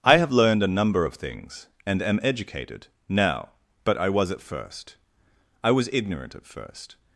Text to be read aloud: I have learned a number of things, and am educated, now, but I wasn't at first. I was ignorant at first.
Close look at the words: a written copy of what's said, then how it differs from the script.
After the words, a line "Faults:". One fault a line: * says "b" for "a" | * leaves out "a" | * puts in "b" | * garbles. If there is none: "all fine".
I have learned a number of things, and am educated, now, but I was at first. I was ignorant at first.
Faults:
* says "was" for "wasn't"